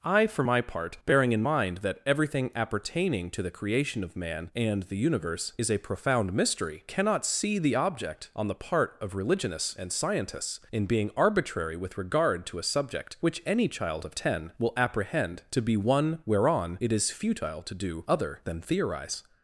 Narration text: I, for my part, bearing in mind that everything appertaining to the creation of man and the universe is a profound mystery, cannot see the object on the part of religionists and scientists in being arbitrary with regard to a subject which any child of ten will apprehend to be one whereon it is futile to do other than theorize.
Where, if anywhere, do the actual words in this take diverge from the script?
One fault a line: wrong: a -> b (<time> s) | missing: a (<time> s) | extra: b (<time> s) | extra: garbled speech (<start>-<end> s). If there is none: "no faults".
no faults